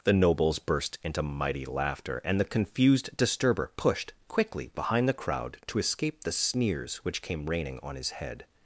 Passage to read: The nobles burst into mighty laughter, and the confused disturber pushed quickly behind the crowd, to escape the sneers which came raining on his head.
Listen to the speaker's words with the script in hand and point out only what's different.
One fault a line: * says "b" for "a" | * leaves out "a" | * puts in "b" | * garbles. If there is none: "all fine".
all fine